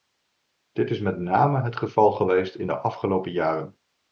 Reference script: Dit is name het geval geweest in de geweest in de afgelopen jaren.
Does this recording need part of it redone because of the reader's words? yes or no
yes